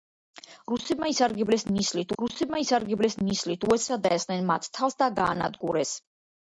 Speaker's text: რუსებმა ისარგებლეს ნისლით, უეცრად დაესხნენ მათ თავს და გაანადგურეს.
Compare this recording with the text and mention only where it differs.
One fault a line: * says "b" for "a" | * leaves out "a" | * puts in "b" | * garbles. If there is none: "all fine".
* puts in "რუსებმა ისარგებლეს ნისლით"